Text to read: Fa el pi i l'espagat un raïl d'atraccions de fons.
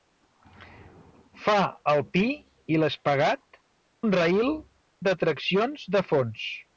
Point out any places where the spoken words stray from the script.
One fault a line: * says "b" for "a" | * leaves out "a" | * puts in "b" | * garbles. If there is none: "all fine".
all fine